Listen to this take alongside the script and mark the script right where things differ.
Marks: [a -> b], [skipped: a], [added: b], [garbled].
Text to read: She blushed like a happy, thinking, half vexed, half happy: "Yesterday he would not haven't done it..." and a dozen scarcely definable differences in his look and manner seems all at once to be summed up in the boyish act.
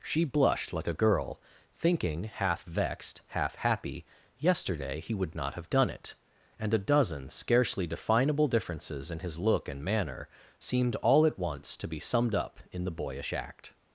She blushed like a [happy, -> girl] thinking, half vexed, half happy: "Yesterday he would not [haven't -> have] done it..." and a dozen scarcely definable differences in his look and manner [seems -> seemed] all at once to be summed up in the boyish act.